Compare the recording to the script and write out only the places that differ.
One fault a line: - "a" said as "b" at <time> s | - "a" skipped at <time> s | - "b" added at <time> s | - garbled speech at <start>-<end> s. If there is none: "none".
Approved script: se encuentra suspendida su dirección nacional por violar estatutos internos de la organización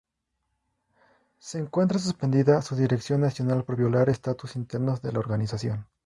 none